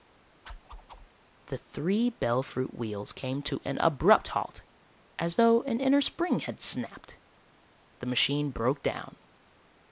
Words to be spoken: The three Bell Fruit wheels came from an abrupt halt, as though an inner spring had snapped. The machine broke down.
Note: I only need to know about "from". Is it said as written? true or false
false